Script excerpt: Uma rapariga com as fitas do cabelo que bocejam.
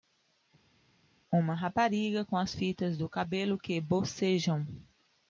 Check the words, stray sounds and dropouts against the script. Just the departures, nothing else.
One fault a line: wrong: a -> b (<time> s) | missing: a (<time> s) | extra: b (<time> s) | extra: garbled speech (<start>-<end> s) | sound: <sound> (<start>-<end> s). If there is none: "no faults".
no faults